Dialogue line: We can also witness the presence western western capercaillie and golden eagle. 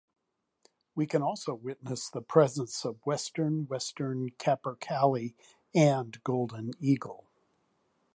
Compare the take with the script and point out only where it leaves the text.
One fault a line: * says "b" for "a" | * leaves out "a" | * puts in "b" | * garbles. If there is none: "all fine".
* puts in "of"